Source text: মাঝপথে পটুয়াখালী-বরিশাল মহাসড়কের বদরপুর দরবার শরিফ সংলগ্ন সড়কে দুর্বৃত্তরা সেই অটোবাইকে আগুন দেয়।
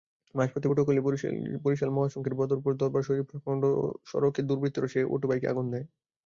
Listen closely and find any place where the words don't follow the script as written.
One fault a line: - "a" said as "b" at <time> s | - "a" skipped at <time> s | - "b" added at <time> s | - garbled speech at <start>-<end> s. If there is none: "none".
none